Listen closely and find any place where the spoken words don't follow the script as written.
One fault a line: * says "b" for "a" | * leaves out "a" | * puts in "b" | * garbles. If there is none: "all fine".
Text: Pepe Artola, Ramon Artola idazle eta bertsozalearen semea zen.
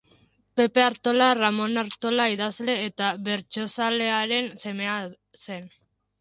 all fine